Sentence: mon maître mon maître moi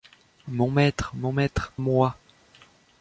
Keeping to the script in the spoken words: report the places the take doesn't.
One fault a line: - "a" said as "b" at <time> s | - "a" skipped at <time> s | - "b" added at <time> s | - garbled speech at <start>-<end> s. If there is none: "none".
none